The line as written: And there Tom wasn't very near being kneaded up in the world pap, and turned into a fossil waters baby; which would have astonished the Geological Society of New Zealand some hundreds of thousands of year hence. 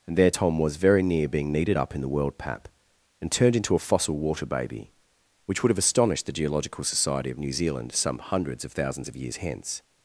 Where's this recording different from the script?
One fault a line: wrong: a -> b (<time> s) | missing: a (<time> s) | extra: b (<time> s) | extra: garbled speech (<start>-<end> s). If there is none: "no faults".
wrong: wasn't -> was (0.6 s)
wrong: waters -> water (4.2 s)
wrong: year -> years (9.2 s)